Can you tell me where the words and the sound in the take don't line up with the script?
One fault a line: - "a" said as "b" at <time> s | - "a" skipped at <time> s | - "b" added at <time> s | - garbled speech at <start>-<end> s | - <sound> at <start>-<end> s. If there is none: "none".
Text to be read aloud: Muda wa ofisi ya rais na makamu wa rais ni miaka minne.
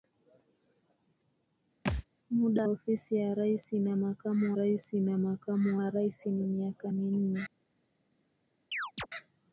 - thud at 1.8-2.0 s
- "wa" skipped at 2.6 s
- "rais na makamu" added at 4.5 s
- chirp at 8.7-9.1 s